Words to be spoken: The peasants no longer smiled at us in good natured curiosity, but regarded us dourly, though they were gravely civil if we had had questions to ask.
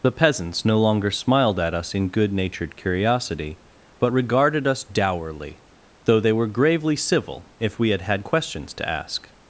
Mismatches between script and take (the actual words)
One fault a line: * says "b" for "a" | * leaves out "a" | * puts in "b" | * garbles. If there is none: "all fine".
all fine